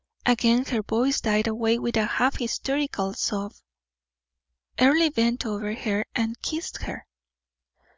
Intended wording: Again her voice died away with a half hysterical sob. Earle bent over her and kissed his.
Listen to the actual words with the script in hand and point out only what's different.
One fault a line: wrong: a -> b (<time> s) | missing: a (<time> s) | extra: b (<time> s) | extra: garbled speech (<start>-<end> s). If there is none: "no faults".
wrong: his -> her (6.8 s)